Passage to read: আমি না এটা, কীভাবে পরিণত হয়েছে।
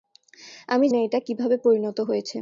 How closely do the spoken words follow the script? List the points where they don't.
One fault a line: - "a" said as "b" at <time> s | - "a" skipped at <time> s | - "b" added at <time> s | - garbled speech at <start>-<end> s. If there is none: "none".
none